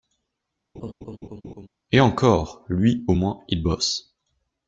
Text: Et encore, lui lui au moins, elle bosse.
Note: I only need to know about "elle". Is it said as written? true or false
false